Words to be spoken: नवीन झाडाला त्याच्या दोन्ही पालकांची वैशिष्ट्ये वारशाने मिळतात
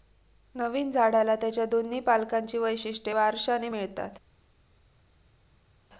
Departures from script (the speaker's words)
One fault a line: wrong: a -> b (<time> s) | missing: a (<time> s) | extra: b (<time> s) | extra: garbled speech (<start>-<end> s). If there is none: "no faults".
no faults